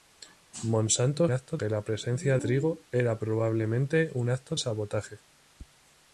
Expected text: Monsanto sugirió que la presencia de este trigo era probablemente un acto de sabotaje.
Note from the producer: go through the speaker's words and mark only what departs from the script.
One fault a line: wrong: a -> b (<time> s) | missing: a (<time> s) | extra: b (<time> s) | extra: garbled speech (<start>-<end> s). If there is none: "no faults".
wrong: sugirió -> acto (1.3 s)
missing: de este (2.4 s)
missing: de (4.6 s)